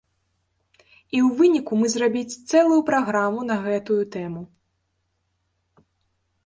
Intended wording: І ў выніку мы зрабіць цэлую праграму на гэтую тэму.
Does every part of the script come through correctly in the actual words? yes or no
yes